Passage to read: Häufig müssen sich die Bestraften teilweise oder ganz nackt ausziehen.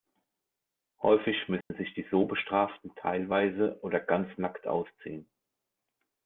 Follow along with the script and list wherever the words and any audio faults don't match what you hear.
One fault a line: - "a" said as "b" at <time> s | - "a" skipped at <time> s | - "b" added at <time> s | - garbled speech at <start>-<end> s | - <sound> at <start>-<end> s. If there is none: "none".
- dropout at 1.6-1.7 s
- "so" added at 2.1 s